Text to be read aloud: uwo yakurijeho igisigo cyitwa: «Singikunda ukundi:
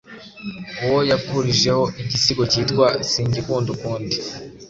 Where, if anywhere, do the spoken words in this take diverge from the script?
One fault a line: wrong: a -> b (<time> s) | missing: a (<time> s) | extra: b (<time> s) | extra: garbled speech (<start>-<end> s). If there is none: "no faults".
no faults